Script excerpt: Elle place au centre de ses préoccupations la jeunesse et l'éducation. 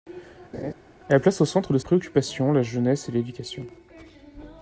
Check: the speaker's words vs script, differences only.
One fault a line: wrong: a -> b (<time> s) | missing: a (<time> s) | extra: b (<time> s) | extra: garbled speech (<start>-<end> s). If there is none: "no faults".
missing: ses (1.8 s)